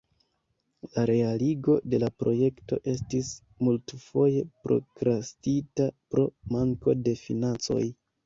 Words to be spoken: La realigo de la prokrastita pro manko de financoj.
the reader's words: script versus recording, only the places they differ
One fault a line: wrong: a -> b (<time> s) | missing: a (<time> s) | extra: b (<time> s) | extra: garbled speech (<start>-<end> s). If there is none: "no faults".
extra: projekto estis multfoje (2.2 s)